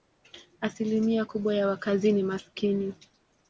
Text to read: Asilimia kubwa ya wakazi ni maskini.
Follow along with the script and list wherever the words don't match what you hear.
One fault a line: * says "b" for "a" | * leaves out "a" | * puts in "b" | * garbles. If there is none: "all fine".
all fine